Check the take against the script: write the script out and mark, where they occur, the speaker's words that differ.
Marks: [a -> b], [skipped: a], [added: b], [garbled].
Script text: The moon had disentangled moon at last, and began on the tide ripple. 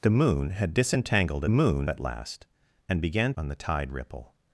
The moon had disentangled moon at last, and began on the tide ripple.